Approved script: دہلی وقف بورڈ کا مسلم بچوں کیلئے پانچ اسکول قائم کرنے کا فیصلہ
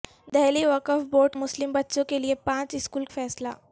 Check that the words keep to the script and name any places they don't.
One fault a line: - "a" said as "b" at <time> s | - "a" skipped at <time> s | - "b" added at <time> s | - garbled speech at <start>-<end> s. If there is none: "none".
- "کا" skipped at 1.4 s
- "قائم کرنے کا" skipped at 3.0 s